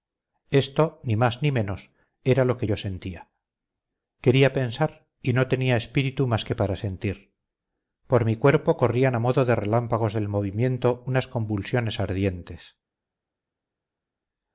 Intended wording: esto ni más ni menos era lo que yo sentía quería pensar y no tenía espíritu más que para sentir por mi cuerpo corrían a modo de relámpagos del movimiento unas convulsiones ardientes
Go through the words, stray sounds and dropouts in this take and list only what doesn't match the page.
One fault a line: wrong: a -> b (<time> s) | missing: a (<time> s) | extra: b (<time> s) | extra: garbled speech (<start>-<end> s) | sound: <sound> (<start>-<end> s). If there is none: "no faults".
no faults